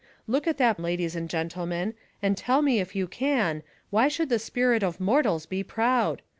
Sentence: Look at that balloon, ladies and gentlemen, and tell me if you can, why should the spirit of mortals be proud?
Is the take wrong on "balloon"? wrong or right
wrong